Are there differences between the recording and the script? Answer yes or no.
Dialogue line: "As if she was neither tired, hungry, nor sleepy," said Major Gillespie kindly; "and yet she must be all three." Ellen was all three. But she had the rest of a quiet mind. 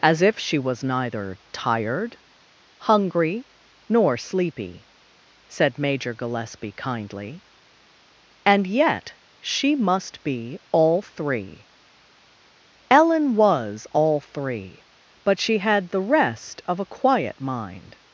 no